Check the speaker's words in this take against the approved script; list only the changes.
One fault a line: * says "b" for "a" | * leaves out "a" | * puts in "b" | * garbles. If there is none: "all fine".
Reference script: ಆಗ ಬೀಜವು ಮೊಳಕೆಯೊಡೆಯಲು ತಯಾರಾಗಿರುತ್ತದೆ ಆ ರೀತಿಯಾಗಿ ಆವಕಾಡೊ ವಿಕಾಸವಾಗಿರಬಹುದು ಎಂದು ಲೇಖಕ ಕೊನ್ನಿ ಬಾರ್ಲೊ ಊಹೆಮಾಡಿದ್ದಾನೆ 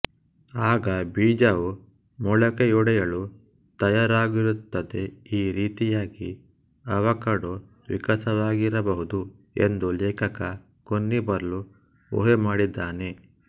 * says "ಈ" for "ಆ"